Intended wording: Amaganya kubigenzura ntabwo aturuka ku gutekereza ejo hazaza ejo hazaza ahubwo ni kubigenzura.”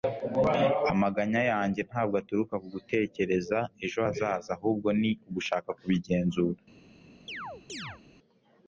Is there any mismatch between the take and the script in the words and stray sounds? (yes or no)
yes